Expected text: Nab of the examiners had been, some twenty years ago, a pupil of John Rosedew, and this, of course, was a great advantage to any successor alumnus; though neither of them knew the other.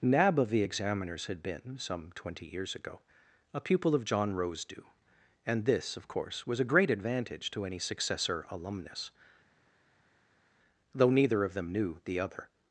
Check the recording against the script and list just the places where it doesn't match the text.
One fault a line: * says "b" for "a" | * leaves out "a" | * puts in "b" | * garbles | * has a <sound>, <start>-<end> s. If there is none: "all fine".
all fine